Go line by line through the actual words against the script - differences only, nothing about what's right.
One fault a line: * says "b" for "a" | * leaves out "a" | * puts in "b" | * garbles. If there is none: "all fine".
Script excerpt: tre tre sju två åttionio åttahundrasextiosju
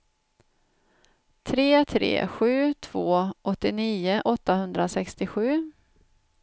all fine